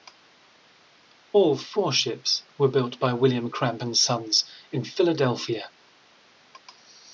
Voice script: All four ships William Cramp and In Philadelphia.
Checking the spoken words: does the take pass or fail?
fail